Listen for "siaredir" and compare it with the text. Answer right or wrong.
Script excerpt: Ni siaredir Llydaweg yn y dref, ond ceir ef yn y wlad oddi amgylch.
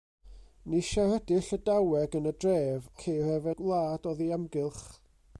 right